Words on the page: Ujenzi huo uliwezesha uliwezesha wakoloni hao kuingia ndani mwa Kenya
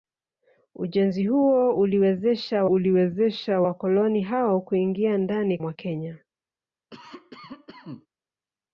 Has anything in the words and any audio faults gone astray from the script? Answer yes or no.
yes